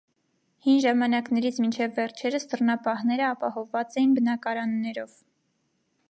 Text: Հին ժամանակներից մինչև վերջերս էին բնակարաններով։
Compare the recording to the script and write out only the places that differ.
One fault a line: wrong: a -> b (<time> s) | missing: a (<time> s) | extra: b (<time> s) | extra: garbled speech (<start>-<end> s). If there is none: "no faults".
extra: դռնապահները ապահովված (2.5 s)